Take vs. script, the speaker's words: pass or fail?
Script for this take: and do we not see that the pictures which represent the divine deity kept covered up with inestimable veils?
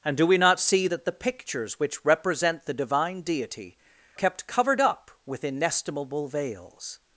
pass